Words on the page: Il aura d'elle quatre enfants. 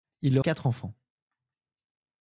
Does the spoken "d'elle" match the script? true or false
false